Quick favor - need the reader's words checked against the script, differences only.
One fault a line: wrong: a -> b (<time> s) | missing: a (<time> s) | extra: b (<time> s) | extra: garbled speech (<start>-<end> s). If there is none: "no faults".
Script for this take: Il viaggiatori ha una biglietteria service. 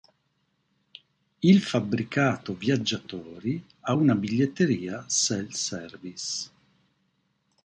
extra: fabbricato (1.6 s)
extra: self (5.1 s)